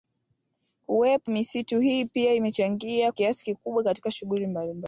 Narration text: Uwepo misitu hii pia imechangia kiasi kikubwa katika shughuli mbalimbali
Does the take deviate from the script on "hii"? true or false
false